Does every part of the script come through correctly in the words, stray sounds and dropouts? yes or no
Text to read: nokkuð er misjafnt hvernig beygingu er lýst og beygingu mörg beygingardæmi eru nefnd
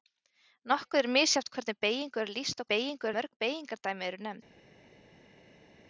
yes